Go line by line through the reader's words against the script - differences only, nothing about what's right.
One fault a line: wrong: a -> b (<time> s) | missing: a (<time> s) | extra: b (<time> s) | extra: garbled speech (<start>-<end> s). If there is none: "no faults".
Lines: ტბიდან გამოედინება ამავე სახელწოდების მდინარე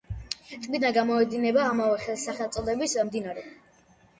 no faults